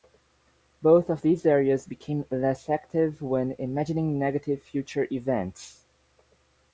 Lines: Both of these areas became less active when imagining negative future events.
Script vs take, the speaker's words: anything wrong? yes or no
no